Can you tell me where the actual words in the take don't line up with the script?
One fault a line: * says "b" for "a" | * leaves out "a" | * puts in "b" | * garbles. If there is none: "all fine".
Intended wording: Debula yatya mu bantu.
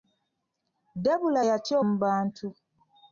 all fine